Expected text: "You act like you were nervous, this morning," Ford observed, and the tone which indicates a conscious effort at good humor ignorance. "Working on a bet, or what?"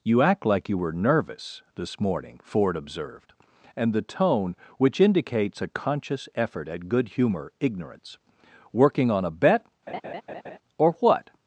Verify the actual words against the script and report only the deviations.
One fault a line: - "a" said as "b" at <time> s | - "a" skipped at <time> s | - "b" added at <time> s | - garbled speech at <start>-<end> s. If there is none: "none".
none